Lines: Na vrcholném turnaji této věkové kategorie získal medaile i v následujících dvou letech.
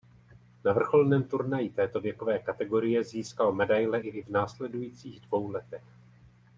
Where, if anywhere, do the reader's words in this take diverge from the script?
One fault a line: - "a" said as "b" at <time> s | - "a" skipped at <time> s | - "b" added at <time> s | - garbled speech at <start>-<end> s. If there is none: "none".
- "i" added at 4.1 s